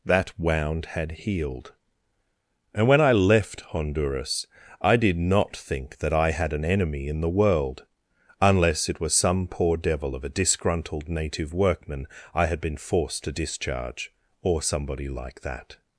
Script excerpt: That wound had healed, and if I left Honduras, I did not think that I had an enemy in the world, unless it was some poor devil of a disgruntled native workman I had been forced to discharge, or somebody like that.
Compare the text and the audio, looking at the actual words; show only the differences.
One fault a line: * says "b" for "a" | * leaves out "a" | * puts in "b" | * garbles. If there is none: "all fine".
* says "when" for "if"